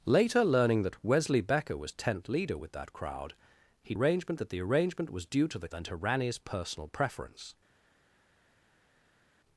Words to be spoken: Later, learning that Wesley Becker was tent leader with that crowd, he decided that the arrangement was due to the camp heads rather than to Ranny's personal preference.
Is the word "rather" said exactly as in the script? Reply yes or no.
no